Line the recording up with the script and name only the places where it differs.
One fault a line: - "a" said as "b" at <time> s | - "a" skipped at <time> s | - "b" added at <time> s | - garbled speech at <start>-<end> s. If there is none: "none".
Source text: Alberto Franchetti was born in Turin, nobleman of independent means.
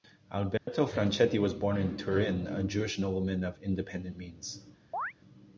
- "a Jewish" added at 2.5 s